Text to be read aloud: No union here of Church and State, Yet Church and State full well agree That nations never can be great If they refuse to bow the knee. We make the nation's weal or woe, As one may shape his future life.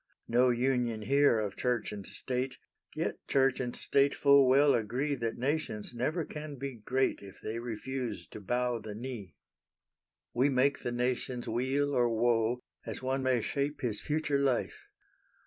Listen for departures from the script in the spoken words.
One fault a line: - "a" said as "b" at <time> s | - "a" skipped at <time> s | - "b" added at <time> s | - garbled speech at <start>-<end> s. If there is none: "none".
none